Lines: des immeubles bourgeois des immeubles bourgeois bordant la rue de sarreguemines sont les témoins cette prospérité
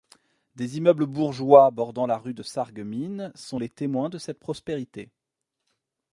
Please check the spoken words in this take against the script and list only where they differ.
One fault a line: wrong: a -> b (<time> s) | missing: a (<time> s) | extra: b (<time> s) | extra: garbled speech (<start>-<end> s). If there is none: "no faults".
missing: des immeubles bourgeois (1.7 s)
extra: de (4.1 s)